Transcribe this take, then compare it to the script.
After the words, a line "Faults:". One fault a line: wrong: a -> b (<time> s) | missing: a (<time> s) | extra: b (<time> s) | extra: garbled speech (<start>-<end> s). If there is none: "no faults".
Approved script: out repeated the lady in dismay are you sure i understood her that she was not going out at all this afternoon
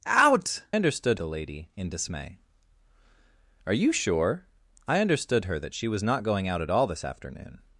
out understood the lady in dismay are you sure i understood her that she was not going out at all this afternoon
Faults:
wrong: repeated -> understood (0.7 s)